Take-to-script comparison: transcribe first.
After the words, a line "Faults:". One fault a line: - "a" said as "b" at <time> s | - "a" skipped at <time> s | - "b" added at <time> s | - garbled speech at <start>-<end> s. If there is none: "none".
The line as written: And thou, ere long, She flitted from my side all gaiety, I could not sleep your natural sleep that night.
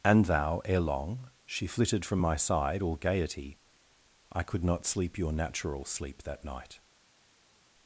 And thou, ere long, She flitted from my side all gaiety, I could not sleep your natural sleep that night.
Faults:
none